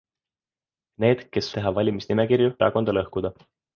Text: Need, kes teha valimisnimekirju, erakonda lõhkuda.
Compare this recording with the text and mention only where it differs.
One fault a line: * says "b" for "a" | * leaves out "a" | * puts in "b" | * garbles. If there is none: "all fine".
all fine